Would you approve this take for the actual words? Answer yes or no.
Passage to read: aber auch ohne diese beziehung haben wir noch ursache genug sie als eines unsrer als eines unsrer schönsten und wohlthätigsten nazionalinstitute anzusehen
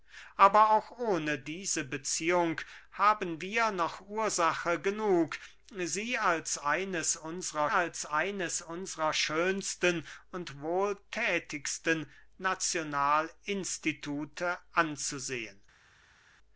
yes